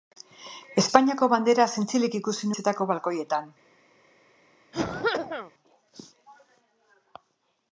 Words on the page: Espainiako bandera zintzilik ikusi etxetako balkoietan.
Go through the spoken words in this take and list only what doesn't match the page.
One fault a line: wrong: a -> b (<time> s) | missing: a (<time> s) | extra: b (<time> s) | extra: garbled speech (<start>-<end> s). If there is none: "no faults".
no faults